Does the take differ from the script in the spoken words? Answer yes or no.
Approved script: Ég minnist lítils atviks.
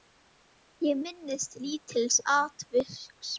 no